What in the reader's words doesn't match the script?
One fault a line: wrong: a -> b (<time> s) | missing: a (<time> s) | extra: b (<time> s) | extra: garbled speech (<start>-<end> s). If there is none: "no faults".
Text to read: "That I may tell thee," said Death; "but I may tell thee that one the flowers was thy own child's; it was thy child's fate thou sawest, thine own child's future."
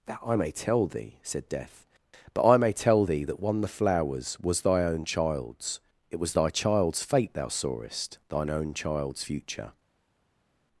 no faults